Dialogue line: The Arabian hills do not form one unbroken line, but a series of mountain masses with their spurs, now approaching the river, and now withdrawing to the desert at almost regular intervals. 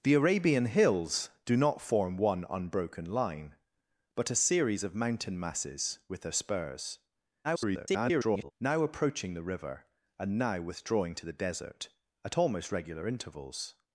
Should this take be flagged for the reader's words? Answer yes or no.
yes